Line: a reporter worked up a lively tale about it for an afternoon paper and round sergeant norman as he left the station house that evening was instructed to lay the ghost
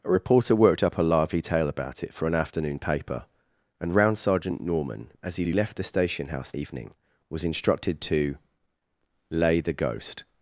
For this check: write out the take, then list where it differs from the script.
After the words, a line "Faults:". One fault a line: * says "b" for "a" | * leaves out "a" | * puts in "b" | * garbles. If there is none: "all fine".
a reporter worked up a lively tale about it for an afternoon paper and round sergeant norman as he he left the station house evening was instructed to lay the ghost
Faults:
* puts in "he"
* leaves out "that"